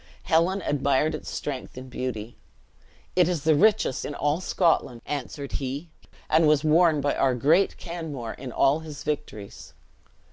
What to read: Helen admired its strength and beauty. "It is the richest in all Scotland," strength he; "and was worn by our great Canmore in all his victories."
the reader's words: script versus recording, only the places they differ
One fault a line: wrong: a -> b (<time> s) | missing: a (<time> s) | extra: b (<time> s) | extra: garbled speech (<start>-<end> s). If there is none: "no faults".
wrong: strength -> answered (5.0 s)